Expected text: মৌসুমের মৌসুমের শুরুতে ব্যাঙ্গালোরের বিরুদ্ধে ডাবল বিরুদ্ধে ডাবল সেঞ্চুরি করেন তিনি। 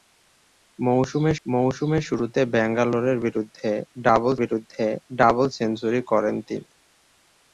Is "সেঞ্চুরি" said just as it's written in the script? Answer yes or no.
yes